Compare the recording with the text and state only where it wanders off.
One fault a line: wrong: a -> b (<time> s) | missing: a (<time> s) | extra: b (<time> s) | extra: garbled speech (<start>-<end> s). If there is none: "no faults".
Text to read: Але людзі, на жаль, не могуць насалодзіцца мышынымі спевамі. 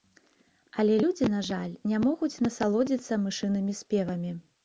no faults